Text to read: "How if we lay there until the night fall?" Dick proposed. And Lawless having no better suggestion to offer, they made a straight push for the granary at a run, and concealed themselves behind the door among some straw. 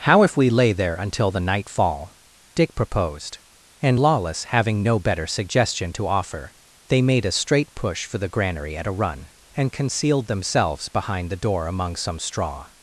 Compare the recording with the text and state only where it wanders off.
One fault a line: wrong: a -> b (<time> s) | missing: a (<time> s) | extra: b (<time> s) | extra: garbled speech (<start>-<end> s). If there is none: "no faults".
no faults